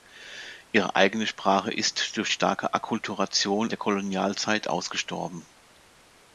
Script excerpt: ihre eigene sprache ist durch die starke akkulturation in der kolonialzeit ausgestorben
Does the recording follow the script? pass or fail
fail